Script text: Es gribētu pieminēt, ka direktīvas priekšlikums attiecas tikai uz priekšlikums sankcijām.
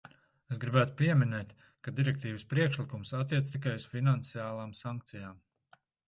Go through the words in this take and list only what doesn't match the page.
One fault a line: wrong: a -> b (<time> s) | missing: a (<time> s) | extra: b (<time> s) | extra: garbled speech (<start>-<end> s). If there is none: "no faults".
wrong: priekšlikums -> finansiālām (3.9 s)